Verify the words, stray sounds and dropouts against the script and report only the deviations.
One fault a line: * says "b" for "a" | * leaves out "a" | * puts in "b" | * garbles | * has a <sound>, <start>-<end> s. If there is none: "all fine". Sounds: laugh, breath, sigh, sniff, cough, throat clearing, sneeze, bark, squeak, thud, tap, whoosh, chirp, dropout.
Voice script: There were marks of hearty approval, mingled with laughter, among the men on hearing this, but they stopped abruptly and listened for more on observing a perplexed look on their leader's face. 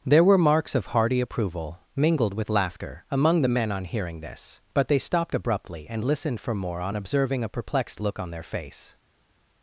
* leaves out "leader's"